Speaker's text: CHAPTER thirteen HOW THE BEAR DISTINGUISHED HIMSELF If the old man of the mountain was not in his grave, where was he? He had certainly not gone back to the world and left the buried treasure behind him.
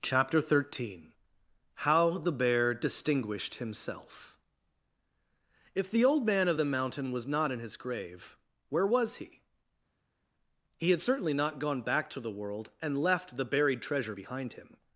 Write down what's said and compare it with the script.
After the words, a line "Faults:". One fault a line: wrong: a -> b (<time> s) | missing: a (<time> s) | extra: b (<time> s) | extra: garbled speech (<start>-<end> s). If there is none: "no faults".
CHAPTER thirteen HOW THE BEAR DISTINGUISHED HIMSELF If the old man of the mountain was not in his grave, where was he? He had certainly not gone back to the world and left the buried treasure behind him.
Faults:
no faults